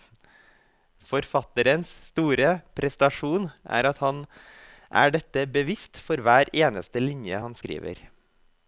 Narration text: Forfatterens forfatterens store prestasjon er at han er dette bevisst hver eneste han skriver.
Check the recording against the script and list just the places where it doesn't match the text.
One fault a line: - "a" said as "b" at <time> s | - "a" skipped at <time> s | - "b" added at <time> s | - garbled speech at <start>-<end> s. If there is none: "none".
- "forfatterens" skipped at 1.9 s
- "for" added at 6.1 s
- "linje" added at 7.0 s